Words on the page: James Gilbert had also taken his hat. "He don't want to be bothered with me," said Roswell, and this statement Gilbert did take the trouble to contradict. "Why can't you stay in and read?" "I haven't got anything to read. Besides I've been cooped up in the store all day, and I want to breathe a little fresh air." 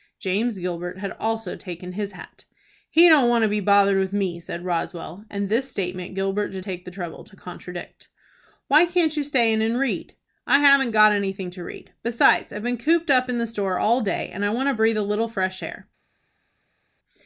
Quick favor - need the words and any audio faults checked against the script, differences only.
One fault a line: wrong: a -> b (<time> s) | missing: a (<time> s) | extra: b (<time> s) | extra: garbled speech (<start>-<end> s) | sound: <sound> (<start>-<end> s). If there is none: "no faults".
no faults